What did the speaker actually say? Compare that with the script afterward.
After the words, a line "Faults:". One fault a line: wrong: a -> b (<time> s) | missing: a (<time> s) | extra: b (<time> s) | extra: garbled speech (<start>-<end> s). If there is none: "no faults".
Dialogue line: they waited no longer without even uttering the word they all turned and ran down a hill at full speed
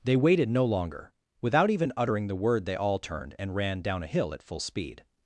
they waited no longer without even uttering the word they all turned and ran down a hill at full speed
Faults:
no faults